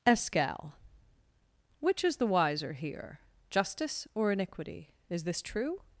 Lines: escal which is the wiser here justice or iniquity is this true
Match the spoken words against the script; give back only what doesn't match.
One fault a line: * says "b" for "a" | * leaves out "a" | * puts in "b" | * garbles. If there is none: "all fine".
all fine